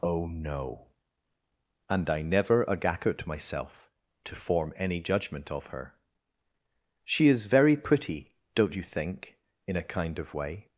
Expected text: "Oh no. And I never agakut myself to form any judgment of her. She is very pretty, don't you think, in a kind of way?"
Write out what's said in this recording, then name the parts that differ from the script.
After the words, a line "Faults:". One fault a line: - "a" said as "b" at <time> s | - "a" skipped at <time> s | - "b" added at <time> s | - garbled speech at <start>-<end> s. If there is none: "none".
"Oh no. And I never agakut myself to form any judgment of her. She is very pretty, don't you think, in a kind of way?"
Faults:
none